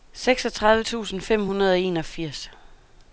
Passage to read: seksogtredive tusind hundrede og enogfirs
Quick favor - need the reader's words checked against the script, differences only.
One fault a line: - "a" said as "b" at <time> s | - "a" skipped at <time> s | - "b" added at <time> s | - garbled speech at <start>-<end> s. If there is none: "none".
- "fem" added at 1.2 s